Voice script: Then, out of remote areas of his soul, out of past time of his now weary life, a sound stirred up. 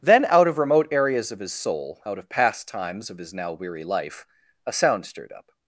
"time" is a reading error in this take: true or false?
true